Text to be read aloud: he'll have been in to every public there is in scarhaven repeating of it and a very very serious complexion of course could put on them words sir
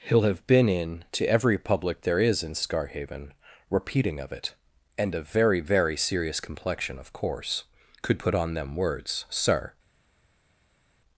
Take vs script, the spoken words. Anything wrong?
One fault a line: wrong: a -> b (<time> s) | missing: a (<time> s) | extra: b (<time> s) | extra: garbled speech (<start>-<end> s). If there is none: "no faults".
no faults